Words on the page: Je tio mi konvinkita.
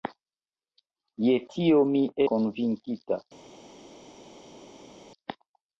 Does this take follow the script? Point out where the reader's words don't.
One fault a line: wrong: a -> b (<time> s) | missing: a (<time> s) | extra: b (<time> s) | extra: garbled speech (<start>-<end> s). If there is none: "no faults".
no faults